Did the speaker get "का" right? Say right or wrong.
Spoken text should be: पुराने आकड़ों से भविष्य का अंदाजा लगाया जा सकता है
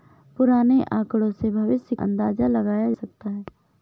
wrong